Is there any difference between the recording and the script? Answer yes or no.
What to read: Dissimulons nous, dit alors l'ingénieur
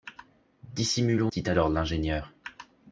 yes